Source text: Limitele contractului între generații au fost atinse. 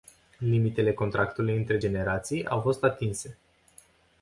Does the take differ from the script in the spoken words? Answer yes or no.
no